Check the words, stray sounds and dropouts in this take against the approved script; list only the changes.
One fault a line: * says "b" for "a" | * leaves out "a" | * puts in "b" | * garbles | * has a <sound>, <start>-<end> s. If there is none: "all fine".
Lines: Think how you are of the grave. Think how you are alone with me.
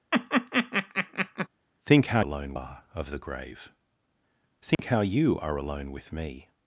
* has a laugh, 0.1-1.5 s
* says "alone" for "you"
* has a dropout, 4.7-4.8 s